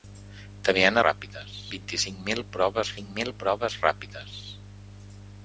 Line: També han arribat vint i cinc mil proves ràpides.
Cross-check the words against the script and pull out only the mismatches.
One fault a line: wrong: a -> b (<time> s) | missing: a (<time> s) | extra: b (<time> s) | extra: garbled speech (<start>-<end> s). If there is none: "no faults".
wrong: arribat -> ràpides (1.1 s)
extra: cinc mil proves (3.0 s)